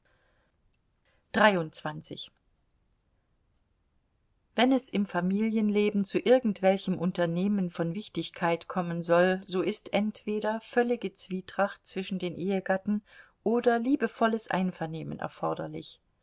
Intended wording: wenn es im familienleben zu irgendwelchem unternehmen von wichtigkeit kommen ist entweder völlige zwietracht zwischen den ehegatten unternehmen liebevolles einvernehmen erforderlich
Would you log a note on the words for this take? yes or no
yes